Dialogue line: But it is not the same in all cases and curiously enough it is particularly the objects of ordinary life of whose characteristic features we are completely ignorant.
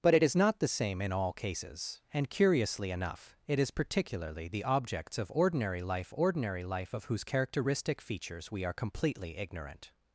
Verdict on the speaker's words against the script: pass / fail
fail